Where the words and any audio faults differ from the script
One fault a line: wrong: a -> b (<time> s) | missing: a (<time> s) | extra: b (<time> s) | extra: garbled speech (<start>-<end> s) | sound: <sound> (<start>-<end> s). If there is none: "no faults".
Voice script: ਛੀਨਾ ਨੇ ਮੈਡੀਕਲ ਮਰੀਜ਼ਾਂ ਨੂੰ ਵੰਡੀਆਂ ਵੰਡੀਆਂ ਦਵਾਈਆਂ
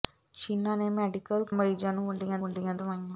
no faults